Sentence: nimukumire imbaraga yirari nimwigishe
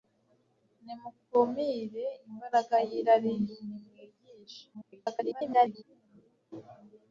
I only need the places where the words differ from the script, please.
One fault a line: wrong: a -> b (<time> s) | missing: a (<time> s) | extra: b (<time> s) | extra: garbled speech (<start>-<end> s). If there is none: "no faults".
extra: garbled speech (4.7-5.8 s)